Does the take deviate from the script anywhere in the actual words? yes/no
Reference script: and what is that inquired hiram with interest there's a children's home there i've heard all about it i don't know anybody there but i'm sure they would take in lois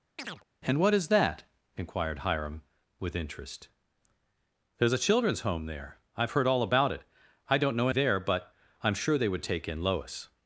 yes